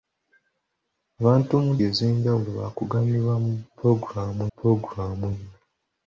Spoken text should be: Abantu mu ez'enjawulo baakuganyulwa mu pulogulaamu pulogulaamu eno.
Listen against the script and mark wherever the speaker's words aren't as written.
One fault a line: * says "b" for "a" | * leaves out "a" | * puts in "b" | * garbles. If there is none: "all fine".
all fine